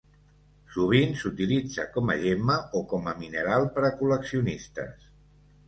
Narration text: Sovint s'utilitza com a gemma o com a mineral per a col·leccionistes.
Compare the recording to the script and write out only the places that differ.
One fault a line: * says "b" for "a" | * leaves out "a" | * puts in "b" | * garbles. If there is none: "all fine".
all fine